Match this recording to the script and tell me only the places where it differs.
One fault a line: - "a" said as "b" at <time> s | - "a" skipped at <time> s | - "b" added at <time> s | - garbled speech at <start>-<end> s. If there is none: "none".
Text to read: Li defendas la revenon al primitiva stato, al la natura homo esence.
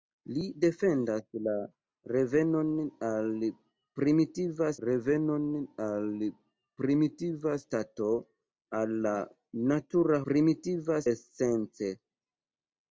- "revenon al primitiva" added at 4.9 s
- "homo" said as "primitiva" at 10.3 s